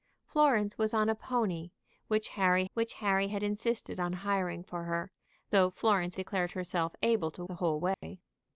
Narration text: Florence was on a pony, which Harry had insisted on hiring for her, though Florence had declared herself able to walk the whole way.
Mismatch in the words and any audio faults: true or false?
true